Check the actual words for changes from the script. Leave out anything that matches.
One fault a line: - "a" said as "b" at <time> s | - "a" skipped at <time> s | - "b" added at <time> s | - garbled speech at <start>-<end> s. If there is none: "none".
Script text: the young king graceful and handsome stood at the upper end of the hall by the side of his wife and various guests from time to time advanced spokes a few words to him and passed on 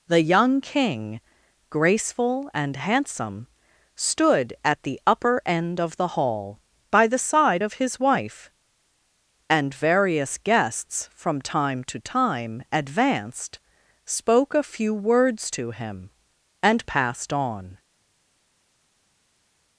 - "spokes" said as "spoke" at 14.0 s